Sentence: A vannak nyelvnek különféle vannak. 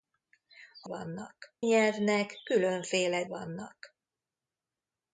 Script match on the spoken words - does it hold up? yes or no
yes